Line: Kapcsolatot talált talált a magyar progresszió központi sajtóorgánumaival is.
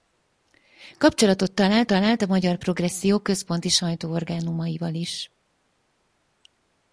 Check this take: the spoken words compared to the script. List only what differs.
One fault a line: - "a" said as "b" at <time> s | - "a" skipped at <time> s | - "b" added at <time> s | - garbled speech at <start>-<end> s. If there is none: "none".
none